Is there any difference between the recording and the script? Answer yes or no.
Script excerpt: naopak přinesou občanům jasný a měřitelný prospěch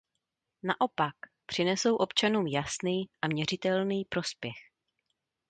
no